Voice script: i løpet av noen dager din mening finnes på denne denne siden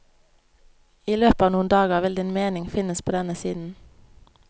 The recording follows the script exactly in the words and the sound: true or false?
false